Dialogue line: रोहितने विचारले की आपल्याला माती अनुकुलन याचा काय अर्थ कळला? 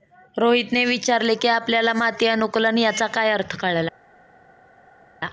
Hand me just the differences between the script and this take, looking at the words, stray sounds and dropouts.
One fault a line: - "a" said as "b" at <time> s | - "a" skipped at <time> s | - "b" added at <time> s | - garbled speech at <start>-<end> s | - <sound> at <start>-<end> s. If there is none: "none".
none